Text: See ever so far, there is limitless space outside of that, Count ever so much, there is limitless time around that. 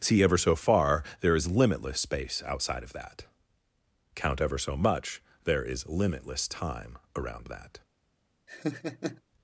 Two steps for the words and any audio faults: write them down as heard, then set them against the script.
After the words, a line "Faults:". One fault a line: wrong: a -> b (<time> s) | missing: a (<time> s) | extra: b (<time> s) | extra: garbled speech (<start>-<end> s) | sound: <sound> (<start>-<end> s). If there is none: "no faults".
See ever so far, there is limitless space outside of that, Count ever so much, there is limitless time around that.
Faults:
sound: laugh (8.5-9.2 s)